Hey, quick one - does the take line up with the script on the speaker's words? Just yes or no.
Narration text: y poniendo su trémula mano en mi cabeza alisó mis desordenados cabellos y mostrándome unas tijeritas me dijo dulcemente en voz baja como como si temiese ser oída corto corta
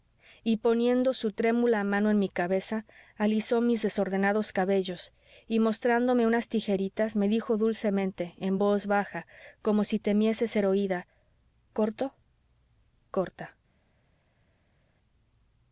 no